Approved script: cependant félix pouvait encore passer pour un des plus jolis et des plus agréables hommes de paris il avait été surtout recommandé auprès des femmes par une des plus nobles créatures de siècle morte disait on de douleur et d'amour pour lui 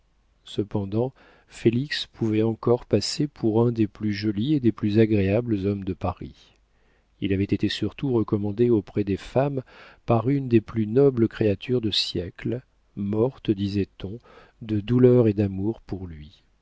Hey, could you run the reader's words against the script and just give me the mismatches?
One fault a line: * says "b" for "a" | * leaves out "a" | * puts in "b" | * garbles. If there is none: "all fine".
all fine